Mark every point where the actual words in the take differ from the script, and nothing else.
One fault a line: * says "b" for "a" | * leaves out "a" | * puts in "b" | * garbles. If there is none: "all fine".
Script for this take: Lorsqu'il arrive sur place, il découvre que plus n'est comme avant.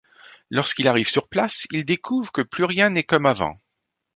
* puts in "rien"